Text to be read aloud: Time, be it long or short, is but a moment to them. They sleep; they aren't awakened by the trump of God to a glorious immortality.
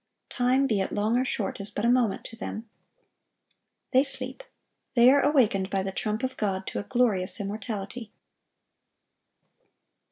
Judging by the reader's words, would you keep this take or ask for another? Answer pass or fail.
fail